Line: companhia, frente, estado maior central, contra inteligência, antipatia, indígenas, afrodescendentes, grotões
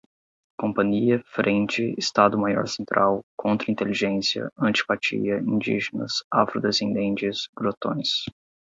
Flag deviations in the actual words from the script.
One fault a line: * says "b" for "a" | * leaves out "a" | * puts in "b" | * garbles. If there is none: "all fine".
all fine